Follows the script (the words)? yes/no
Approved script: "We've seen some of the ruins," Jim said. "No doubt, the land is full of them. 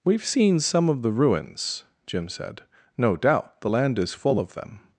yes